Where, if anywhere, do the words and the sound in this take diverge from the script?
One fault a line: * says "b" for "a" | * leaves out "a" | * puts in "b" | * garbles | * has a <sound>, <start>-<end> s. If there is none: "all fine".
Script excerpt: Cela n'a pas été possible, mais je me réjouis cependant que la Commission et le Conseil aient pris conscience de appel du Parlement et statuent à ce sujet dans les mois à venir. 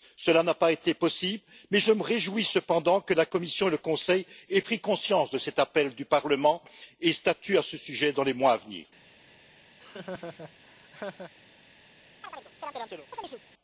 * puts in "cet"
* has a laugh, 9.8-11.3 s
* has a chirp, 12.2-13.4 s